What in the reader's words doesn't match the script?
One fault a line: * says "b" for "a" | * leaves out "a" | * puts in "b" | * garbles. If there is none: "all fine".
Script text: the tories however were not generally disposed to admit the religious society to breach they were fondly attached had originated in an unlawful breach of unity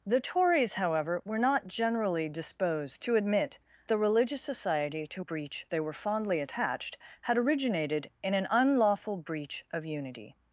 all fine